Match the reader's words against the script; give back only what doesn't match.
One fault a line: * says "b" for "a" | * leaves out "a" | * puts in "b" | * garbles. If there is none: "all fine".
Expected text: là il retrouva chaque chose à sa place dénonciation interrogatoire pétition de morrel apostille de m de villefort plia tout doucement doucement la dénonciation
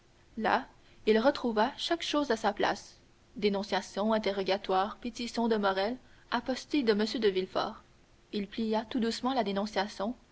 * puts in "il"
* leaves out "doucement"